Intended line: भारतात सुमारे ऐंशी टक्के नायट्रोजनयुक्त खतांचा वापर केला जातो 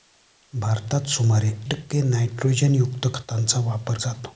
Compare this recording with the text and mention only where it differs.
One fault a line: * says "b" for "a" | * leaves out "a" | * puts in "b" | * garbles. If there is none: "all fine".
* leaves out "ऐंशी"
* leaves out "केला"